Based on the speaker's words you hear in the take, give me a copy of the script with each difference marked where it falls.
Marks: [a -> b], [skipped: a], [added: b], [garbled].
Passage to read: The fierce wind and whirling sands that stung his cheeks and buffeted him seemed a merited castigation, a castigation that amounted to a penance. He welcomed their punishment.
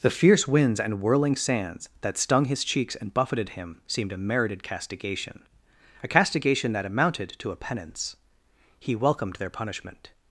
The fierce [wind -> winds] and whirling sands that stung his cheeks and buffeted him seemed a merited castigation, a castigation that amounted to a penance. He welcomed their punishment.